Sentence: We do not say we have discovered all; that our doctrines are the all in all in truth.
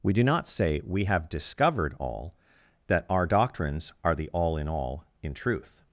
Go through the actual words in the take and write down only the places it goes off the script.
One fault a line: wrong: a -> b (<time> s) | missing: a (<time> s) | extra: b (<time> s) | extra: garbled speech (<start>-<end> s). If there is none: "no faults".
no faults